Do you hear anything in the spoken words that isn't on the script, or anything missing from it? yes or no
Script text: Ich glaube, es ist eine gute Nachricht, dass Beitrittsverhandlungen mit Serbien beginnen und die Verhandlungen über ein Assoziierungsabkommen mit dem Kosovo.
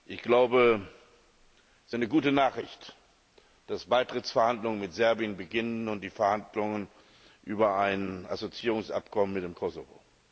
no